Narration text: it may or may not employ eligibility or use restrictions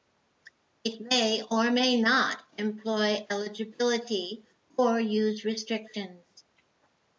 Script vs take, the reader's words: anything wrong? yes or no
no